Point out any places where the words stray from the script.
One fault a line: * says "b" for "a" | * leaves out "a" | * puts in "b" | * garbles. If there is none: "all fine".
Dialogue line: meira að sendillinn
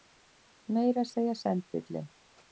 * puts in "segja"